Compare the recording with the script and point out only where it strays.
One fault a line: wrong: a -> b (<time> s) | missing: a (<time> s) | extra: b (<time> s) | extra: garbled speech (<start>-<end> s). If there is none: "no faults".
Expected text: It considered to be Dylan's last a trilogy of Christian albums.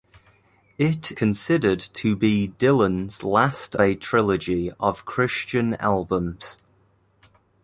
no faults